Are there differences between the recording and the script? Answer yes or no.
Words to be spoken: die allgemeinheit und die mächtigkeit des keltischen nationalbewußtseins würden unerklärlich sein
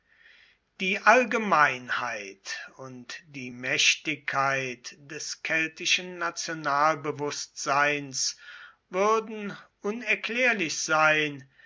no